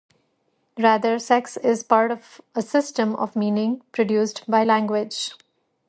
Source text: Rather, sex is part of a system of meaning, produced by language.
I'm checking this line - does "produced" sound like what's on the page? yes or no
yes